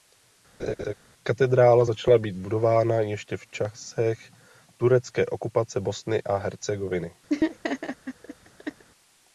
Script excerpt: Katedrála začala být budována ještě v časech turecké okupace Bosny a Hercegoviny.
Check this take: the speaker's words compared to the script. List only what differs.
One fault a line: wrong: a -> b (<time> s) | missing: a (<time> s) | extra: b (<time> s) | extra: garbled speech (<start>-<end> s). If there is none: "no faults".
no faults